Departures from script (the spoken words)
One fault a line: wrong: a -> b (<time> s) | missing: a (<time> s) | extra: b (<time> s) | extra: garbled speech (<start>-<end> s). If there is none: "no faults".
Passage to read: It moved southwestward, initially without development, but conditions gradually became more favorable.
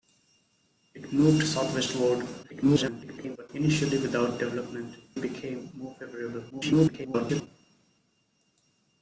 extra: garbled speech (2.4-3.5 s)
missing: but conditions gradually (5.0 s)
extra: garbled speech (6.5-7.5 s)